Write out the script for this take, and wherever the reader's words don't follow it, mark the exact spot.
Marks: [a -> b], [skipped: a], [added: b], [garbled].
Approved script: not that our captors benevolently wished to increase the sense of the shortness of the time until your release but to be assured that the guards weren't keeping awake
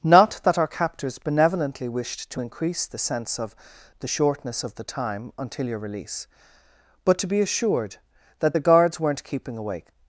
not that our captors benevolently wished to increase the sense of the shortness of the time until your release but to be assured that the guards weren't keeping awake